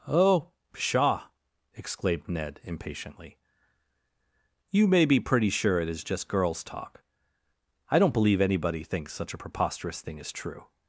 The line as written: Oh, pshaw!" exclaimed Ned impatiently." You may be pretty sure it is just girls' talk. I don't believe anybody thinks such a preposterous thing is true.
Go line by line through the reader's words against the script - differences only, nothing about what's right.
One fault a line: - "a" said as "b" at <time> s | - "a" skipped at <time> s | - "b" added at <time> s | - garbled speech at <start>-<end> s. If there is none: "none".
none